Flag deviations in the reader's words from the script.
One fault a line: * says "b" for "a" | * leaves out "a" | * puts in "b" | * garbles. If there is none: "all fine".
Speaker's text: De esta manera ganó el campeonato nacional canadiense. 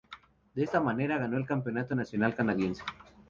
all fine